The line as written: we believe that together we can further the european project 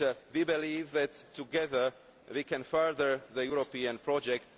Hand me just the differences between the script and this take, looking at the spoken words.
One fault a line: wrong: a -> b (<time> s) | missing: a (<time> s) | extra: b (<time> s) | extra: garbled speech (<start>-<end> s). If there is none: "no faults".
no faults